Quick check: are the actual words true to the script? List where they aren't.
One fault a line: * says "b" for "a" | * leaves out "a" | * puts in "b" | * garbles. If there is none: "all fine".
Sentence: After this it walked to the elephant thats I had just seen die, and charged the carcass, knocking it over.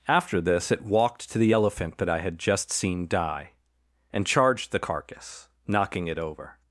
* says "that" for "thats"